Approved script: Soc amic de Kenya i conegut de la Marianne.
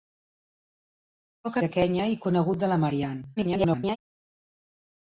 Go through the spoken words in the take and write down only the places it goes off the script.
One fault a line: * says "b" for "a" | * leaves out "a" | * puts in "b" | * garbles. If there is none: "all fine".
* leaves out "amic"
* garbles